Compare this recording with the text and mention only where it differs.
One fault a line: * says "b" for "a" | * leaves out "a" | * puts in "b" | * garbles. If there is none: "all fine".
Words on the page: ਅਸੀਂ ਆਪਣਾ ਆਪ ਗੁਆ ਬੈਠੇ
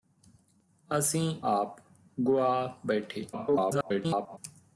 * leaves out "ਆਪਣਾ"
* garbles